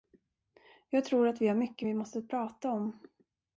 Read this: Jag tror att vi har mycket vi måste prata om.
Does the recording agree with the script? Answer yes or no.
yes